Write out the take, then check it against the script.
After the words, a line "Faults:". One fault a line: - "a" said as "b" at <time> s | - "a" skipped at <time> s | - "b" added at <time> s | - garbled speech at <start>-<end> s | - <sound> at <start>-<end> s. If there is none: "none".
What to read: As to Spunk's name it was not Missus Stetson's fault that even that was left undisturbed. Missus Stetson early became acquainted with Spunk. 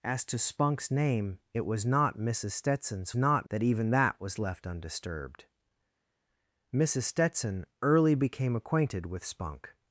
As to Spunk's name it was not Missus Stetson's not that even that was left undisturbed. Missus Stetson early became acquainted with Spunk.
Faults:
- "fault" said as "not" at 3.2 s